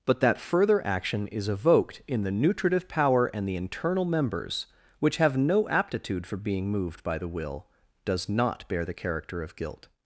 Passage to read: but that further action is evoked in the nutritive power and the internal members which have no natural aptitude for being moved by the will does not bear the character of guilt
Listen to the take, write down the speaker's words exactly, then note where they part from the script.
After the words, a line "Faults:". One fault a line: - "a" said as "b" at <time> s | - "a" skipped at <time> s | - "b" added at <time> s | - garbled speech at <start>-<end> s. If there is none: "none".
but that further action is evoked in the nutritive power and the internal members which have no aptitude for being moved by the will does not bear the character of guilt
Faults:
- "natural" skipped at 5.7 s